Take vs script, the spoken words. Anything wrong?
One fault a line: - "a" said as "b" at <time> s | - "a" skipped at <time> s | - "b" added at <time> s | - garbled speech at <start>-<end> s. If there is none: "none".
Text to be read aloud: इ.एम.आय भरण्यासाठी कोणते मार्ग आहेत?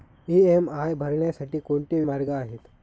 none